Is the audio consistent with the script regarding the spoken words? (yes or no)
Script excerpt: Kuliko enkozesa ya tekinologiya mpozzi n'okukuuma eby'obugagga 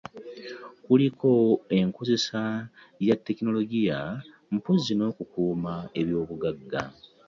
yes